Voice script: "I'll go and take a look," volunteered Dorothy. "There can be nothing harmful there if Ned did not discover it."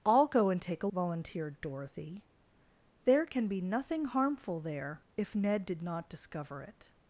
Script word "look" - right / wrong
wrong